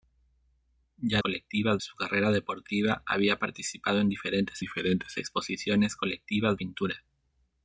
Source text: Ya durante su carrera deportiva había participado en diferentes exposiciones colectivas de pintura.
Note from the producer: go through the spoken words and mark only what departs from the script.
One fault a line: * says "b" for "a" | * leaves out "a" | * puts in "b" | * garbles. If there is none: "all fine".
* says "colectivas" for "durante"
* puts in "diferentes"
* leaves out "de"